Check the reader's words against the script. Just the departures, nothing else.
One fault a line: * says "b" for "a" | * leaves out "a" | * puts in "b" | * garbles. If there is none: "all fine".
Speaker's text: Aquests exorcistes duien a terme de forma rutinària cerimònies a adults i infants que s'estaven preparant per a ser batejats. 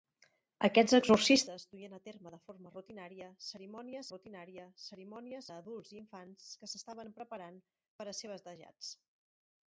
* puts in "rutinària cerimònies"